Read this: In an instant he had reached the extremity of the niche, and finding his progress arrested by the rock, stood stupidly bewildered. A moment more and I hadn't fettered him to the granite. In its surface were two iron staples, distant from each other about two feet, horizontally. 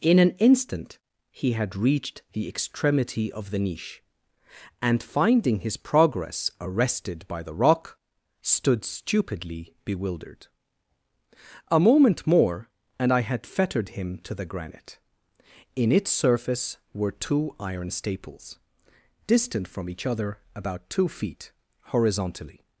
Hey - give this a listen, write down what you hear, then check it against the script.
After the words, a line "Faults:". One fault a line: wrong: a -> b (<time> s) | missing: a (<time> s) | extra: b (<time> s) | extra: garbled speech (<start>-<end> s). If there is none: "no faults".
In an instant he had reached the extremity of the niche, and finding his progress arrested by the rock, stood stupidly bewildered. A moment more and I had fettered him to the granite. In its surface were two iron staples, distant from each other about two feet, horizontally.
Faults:
wrong: hadn't -> had (13.2 s)